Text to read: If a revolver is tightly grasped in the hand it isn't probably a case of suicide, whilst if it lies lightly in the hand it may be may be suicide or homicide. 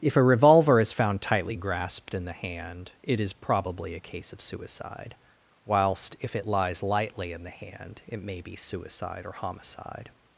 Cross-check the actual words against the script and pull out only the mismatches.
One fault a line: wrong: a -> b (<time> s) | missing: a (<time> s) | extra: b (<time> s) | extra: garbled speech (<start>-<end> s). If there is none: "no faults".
extra: found (0.9 s)
wrong: isn't -> is (3.2 s)
missing: may be (8.5 s)